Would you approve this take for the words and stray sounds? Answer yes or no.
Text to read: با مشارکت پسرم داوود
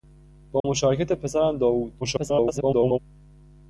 no